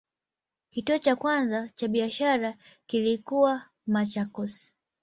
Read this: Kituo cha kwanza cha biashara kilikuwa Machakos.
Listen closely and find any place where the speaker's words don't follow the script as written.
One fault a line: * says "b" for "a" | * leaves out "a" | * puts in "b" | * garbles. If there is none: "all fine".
all fine